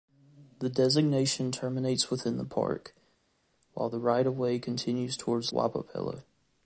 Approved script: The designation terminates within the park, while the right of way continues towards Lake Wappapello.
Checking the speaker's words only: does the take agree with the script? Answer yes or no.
no